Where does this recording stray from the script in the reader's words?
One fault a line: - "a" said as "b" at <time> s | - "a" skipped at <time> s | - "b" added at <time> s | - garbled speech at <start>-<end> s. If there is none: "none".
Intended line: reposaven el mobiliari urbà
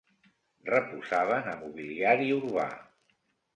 none